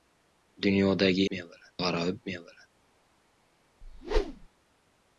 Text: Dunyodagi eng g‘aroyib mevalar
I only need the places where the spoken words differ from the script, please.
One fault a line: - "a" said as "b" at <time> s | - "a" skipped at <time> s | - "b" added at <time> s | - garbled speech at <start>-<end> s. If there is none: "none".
- "eng" said as "mevalar" at 1.4 s